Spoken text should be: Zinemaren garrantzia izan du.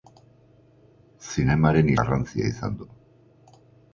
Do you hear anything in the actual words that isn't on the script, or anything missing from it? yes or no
no